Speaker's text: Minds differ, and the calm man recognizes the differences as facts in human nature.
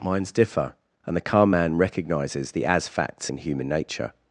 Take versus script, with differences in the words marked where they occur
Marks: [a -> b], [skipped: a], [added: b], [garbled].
Minds differ, and the calm man recognizes the [skipped: differences] as facts in human nature.